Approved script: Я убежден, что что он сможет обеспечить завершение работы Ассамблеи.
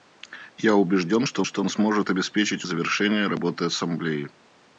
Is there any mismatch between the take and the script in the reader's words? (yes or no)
no